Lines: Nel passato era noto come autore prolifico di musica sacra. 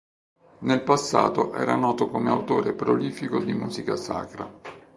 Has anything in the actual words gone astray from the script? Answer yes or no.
no